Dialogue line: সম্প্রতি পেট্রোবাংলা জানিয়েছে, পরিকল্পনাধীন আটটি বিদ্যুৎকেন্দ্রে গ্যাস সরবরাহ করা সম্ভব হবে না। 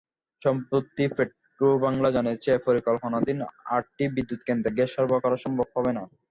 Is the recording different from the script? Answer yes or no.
no